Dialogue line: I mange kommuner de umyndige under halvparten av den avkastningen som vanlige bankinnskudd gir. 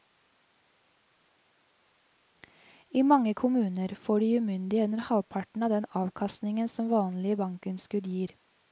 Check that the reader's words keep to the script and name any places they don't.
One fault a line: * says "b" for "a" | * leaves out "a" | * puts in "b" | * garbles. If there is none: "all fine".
* puts in "får"